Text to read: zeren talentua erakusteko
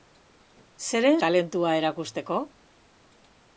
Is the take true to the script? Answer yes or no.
yes